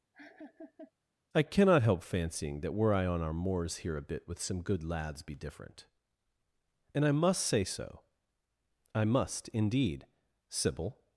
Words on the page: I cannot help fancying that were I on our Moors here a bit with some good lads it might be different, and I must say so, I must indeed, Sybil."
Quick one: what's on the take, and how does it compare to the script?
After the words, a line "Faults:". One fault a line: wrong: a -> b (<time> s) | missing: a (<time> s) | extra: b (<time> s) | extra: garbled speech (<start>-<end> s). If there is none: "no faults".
I cannot help fancying that were I on our Moors here a bit with some good lads be different, and I must say so, I must indeed, Sybil."
Faults:
missing: it might (5.2 s)